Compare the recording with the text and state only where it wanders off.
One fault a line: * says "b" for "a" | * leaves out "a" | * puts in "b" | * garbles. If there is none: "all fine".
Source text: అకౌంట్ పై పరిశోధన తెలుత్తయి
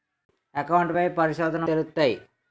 all fine